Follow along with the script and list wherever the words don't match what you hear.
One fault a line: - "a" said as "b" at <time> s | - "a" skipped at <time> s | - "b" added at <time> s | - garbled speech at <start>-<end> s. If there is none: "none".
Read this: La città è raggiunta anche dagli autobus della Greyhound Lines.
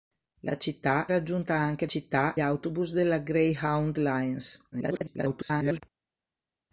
- "è" skipped at 1.1 s
- "dagli" said as "città" at 1.9 s
- garbled speech at 4.7-5.8 s